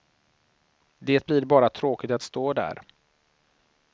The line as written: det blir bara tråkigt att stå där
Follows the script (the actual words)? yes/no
yes